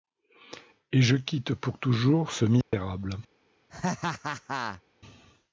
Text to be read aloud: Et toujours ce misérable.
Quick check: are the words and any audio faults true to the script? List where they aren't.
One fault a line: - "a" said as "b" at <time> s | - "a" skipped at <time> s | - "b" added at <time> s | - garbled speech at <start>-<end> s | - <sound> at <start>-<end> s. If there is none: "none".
- "je quitte pour" added at 1.0 s
- dropout at 2.6-2.7 s
- laugh at 3.7-4.8 s